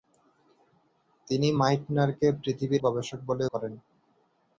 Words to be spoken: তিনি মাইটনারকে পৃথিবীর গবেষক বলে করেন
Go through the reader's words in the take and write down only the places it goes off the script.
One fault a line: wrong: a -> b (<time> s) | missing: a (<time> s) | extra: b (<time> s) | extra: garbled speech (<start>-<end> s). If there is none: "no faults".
no faults